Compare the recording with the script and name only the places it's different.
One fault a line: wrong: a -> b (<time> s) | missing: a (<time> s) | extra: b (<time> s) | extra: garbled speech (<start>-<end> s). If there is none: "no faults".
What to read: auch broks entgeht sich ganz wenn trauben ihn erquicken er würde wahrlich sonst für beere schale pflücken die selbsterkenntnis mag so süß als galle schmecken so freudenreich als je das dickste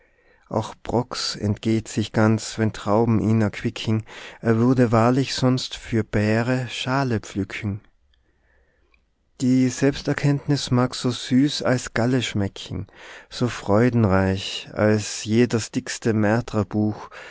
no faults